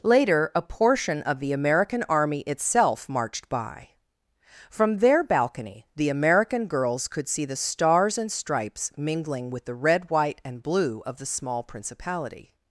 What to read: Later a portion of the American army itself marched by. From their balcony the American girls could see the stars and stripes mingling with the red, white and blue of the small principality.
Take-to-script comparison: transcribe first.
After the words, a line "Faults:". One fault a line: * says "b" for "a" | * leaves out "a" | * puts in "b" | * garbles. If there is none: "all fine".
Later a portion of the American army itself marched by. From their balcony the American girls could see the stars and stripes mingling with the red, white and blue of the small principality.
Faults:
all fine